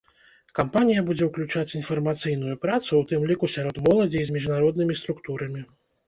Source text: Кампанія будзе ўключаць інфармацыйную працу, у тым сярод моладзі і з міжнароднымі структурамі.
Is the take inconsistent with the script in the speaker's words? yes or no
yes